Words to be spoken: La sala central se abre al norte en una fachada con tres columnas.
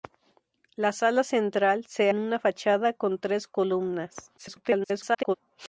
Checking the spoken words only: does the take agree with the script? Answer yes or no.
no